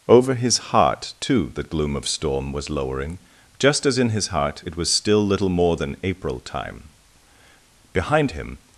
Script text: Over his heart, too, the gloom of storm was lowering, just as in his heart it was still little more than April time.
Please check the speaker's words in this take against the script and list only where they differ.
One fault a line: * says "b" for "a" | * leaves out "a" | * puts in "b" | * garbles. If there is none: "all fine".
* puts in "Behind him"